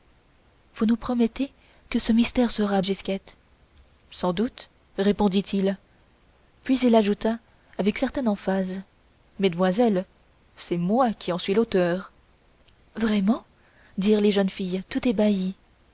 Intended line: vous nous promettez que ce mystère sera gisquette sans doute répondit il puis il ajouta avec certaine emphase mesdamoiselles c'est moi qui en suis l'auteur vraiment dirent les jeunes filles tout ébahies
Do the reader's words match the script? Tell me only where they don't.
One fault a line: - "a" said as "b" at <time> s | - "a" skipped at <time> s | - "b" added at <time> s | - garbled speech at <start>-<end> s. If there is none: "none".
none